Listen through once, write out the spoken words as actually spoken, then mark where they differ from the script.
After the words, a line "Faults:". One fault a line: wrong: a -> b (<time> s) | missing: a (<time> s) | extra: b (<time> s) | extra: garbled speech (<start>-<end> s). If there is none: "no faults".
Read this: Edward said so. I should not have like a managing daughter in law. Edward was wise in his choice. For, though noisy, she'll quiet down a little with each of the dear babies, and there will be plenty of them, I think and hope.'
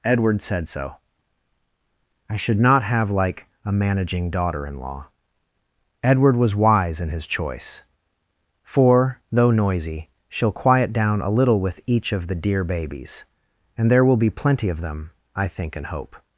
Edward said so. I should not have like a managing daughter in law. Edward was wise in his choice. For, though noisy, she'll quiet down a little with each of the dear babies, and there will be plenty of them, I think and hope.'
Faults:
no faults